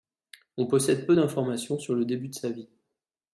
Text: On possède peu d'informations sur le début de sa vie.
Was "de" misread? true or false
false